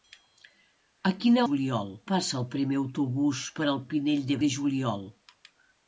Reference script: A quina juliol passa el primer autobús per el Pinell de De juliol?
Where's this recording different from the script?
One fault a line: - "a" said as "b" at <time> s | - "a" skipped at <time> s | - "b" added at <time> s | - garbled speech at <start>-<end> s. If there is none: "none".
none